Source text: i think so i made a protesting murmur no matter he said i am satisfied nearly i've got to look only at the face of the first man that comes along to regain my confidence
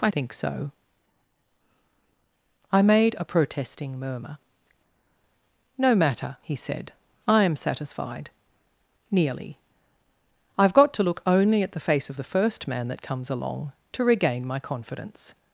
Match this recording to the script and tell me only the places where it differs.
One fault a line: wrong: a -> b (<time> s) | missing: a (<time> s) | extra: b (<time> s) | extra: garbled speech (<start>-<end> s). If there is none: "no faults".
no faults